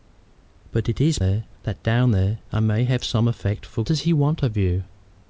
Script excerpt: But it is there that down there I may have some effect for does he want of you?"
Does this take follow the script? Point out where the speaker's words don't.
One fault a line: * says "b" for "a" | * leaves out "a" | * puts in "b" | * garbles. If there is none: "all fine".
all fine